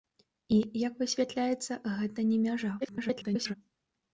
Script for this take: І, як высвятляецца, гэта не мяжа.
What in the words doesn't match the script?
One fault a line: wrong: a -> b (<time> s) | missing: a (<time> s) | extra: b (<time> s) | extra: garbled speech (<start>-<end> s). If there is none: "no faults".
extra: garbled speech (2.8-3.5 s)